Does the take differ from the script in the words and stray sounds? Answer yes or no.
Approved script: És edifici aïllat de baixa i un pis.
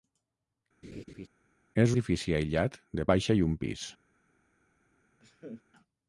yes